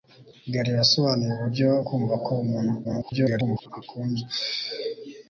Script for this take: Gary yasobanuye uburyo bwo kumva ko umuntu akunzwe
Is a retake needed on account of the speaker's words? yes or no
yes